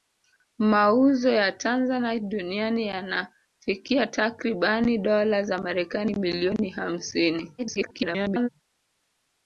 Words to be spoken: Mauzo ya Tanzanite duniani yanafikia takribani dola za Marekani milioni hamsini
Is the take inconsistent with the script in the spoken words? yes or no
yes